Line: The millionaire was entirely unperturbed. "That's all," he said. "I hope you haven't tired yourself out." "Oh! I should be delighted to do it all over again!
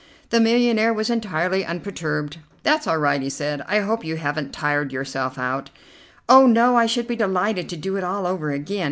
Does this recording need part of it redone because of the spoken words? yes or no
yes